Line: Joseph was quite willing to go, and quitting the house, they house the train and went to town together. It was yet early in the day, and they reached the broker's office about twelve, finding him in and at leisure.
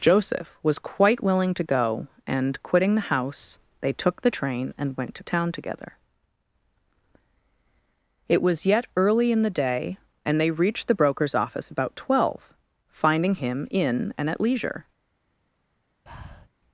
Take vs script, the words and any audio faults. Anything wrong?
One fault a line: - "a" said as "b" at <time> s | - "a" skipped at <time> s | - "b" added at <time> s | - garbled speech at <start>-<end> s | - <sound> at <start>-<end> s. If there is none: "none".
- "house" said as "took" at 3.9 s
- breath at 16.1-16.5 s